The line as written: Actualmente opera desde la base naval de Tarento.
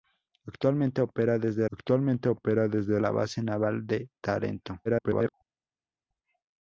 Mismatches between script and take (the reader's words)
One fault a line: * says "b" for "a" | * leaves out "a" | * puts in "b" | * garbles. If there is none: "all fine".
* puts in "actualmente opera desde"
* garbles